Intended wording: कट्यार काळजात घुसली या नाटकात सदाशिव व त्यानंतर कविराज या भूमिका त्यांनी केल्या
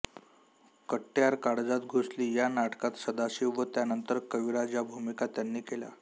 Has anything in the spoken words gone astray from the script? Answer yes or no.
no